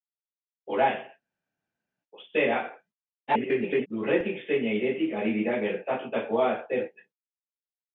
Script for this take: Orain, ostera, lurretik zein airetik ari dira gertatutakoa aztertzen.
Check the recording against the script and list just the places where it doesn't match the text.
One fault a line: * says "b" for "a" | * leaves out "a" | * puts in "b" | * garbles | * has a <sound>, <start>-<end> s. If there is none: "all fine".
* garbles